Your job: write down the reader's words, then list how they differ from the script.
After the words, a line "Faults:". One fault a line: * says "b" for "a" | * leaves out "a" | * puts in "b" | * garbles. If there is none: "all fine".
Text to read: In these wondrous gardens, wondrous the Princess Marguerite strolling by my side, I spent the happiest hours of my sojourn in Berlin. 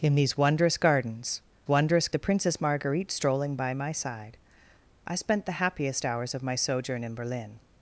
In these wondrous gardens, wondrous the Princess Marguerite strolling by my side, I spent the happiest hours of my sojourn in Berlin.
Faults:
all fine